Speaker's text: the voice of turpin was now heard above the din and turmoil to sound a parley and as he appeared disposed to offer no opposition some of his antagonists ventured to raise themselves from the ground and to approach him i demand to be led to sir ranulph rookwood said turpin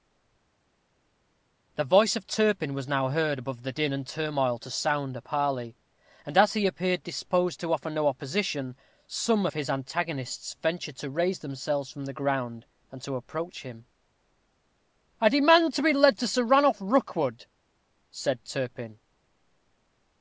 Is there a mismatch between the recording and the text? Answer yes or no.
no